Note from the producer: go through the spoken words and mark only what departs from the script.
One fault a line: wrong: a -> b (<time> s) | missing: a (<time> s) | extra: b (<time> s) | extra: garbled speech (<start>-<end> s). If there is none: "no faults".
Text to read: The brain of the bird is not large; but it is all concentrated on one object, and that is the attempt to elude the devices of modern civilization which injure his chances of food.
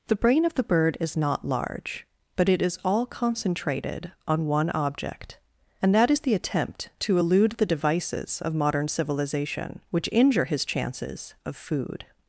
no faults